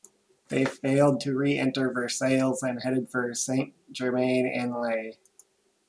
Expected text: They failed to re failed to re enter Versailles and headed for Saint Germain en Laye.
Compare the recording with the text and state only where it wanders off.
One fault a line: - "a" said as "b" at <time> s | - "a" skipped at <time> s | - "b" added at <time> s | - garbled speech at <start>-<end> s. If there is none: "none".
- "failed to re" skipped at 1.6 s